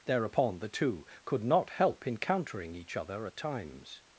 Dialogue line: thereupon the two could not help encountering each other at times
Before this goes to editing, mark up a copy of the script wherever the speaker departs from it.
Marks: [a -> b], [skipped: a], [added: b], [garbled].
thereupon the two could not help encountering each other at times